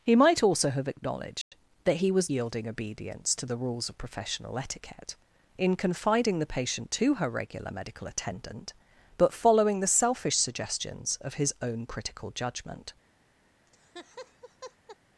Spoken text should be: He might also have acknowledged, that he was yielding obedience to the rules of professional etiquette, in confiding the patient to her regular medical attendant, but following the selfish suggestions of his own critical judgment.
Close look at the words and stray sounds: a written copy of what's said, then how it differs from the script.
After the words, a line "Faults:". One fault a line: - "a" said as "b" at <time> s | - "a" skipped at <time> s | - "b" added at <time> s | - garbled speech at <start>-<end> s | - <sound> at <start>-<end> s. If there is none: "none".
He might also have acknowledged, that he was yielding obedience to the rules of professional etiquette, in confiding the patient to her regular medical attendant, but following the selfish suggestions of his own critical judgment.
Faults:
- dropout at 1.4-1.5 s
- laugh at 13.7-15.0 s